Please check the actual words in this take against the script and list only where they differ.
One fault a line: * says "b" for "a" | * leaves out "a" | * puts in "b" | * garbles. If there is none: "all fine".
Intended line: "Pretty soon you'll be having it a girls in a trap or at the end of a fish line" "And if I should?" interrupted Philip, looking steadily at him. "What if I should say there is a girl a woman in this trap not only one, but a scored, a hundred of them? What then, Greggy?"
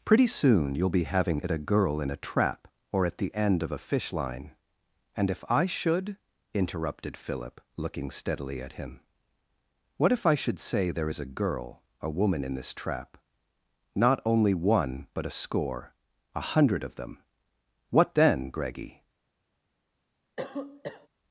* says "girl" for "girls"
* says "score" for "scored"